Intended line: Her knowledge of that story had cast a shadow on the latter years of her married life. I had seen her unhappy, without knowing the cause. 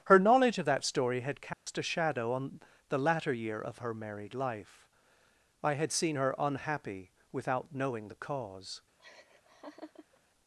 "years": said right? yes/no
no